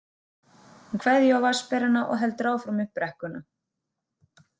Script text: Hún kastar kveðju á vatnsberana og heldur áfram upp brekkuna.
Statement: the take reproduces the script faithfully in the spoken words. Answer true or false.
false